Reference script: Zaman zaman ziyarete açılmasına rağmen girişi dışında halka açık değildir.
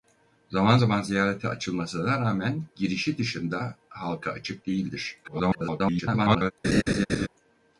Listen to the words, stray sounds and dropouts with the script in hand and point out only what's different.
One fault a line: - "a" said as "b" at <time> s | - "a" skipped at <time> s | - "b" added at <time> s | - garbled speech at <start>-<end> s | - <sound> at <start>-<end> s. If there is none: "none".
- garbled speech at 5.2-6.5 s
- laugh at 6.6-7.3 s